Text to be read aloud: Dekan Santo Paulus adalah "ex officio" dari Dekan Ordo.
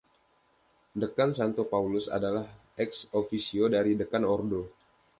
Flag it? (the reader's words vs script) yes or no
no